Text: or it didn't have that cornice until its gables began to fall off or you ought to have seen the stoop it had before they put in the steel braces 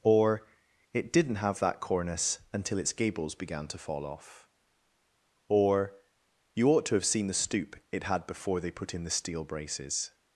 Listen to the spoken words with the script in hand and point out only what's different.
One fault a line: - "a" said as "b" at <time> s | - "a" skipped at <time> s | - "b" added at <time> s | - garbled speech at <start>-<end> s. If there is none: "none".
none